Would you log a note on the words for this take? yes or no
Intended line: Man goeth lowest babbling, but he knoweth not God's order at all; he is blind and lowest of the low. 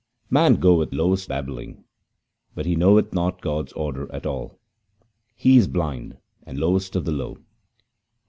no